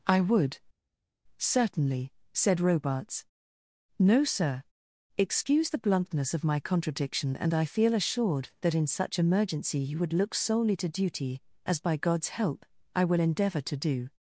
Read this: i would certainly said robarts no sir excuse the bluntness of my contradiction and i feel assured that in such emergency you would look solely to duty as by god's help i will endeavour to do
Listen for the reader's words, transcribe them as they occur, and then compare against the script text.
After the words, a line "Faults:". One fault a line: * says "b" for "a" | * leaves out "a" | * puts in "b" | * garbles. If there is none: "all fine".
i would certainly said robarts no sir excuse the bluntness of my contradiction and i feel assured that in such emergency you would look solely to duty as by god's help i will endeavour to do
Faults:
all fine